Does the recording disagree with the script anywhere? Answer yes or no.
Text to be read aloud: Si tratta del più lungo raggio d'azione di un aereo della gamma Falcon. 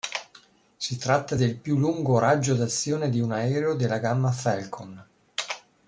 no